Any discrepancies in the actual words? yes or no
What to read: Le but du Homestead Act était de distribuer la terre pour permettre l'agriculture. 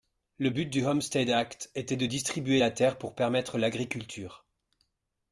no